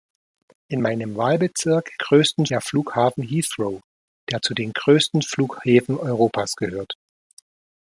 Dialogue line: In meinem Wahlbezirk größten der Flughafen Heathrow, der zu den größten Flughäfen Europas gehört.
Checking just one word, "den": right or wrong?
right